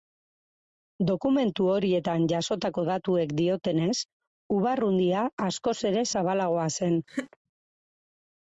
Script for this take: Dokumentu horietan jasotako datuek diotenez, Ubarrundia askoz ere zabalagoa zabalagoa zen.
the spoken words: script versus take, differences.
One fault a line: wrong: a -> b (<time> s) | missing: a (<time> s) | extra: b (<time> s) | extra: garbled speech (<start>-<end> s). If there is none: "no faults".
missing: zabalagoa (6.7 s)